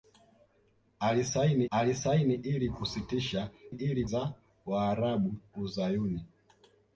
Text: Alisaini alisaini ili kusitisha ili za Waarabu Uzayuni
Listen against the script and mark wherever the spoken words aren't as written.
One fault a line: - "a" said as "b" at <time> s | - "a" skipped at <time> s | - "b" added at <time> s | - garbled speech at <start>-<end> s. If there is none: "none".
none